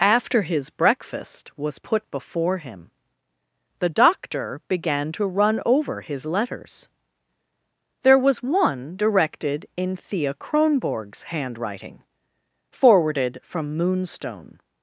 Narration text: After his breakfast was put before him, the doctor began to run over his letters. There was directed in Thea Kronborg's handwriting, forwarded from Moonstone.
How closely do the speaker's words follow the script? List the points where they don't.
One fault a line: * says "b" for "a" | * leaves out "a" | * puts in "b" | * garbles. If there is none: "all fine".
* puts in "one"